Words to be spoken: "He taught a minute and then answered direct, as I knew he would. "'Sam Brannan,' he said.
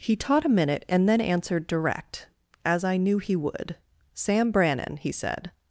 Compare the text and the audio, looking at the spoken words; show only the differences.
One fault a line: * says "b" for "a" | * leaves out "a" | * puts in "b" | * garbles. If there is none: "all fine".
all fine